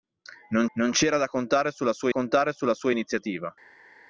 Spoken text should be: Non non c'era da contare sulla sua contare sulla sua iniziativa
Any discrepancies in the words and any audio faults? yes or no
no